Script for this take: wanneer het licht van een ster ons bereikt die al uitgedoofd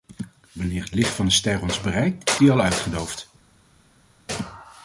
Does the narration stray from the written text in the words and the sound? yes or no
no